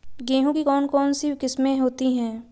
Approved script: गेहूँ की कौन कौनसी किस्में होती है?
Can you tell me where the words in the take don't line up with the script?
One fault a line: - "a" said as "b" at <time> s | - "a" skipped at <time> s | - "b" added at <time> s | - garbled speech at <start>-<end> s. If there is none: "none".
none